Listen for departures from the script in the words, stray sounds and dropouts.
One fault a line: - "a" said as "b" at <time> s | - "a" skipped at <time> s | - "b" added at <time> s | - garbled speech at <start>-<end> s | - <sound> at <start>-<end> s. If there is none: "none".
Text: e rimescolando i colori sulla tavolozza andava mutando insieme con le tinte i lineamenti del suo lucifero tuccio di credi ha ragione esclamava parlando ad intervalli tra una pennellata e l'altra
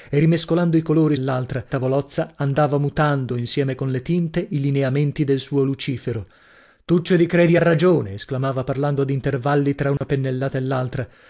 - "sulla" said as "l'altra" at 1.2 s
- dropout at 10.0-10.0 s